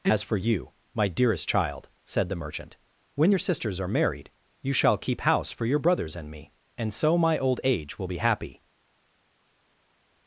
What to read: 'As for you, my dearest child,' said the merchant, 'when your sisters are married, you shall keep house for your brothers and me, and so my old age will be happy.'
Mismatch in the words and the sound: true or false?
false